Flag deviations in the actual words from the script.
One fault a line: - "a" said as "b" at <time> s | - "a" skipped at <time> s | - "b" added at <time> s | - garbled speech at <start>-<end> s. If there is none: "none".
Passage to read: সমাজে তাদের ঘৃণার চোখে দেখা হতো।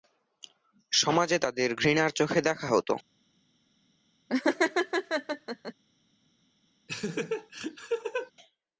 none